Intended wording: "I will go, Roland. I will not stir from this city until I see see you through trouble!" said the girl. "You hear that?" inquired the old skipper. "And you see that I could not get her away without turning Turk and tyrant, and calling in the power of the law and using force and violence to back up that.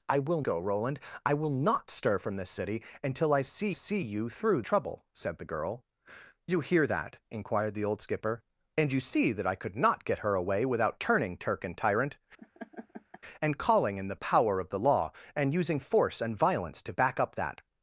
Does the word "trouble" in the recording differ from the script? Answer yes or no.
no